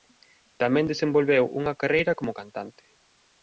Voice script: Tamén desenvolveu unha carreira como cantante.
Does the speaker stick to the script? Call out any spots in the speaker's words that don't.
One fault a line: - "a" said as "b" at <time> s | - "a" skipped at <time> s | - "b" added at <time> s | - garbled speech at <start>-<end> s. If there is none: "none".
none